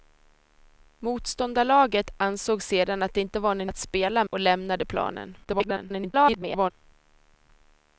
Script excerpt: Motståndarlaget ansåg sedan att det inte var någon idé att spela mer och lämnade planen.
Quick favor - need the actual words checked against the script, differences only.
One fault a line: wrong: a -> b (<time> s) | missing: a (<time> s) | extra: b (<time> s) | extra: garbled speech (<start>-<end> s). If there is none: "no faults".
missing: idé (3.7 s)
missing: mer (4.2 s)
extra: garbled speech (5.4-6.7 s)